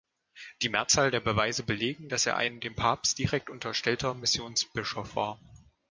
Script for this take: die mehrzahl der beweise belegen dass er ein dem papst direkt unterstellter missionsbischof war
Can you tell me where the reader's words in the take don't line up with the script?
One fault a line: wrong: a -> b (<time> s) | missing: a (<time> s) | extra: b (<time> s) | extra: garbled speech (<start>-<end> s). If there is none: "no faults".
no faults